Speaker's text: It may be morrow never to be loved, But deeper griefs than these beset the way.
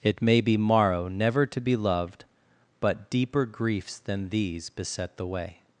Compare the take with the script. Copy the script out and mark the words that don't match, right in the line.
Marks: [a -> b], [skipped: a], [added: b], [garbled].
It may be morrow never to be loved, But deeper griefs than these beset the way.